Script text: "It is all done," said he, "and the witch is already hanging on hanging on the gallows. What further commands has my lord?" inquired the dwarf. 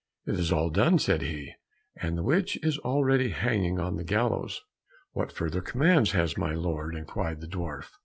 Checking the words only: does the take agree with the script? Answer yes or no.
no